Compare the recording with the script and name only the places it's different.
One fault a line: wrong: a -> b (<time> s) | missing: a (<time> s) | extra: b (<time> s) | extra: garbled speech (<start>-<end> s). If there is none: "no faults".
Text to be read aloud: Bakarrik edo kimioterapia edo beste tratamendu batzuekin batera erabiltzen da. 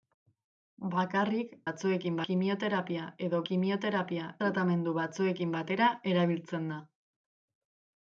wrong: edo -> batzuekin (1.7 s)
wrong: beste -> kimioterapia (3.5 s)